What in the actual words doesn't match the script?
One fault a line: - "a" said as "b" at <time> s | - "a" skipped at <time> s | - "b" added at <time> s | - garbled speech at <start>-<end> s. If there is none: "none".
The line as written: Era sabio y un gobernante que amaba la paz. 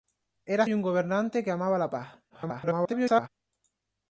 - "sabio" skipped at 0.7 s
- garbled speech at 2.3-3.3 s